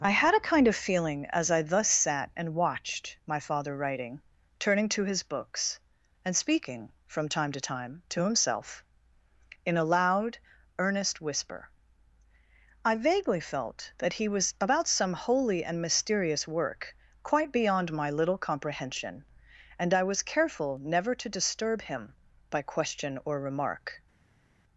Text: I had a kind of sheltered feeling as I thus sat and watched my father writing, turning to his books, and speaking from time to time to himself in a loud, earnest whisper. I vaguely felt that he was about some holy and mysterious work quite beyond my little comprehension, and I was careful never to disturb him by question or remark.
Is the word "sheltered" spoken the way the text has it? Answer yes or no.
no